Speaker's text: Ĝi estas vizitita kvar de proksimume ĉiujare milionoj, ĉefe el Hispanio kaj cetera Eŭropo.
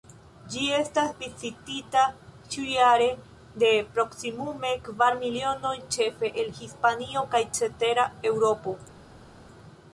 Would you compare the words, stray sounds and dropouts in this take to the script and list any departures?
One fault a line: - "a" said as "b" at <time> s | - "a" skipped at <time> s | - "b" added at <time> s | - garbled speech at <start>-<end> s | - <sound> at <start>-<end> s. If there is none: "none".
- "kvar" said as "ĉiujare" at 2.5 s
- "ĉiujare" said as "kvar" at 4.9 s